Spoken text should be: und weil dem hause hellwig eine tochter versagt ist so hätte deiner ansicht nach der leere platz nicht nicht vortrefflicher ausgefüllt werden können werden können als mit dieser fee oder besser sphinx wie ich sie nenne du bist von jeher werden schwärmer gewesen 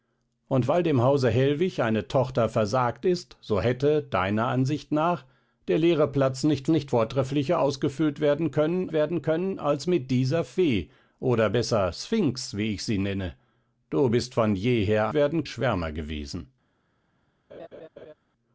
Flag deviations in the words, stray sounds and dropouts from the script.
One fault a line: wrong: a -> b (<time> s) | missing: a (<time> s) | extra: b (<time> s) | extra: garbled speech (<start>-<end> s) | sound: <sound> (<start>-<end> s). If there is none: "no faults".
sound: laugh (17.5-18.1 s)